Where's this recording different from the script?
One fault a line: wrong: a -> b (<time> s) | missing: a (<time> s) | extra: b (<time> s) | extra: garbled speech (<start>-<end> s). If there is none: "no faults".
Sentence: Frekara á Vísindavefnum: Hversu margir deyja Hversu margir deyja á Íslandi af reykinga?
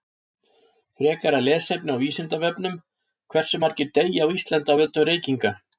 extra: lesefni (1.4 s)
missing: Hversu margir deyja (4.2 s)
extra: völdum (4.8 s)